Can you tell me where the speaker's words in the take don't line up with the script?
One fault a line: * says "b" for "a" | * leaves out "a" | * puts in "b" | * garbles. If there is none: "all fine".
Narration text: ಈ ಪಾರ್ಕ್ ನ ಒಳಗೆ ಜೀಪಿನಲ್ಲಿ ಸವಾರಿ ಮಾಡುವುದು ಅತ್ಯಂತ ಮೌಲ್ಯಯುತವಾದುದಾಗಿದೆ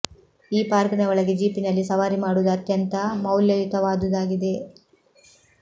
all fine